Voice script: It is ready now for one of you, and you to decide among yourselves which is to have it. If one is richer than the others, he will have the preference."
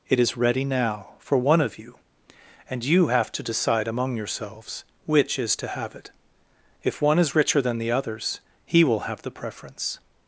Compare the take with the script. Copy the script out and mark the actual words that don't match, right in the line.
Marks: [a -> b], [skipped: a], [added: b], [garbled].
It is ready now for one of you, and you [added: have] to decide among yourselves which is to have it. If one is richer than the others, he will have the preference."